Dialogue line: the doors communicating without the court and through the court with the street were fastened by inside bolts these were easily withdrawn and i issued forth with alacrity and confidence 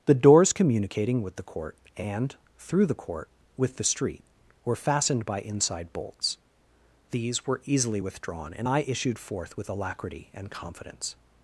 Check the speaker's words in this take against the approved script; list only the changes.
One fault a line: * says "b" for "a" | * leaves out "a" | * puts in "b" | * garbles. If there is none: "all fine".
* says "with" for "without"